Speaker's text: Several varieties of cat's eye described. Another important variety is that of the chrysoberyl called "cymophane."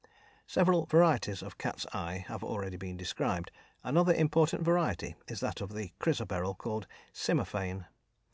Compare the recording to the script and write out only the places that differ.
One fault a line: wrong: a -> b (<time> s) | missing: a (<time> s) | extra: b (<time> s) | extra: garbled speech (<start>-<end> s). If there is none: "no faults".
extra: have already been (2.3 s)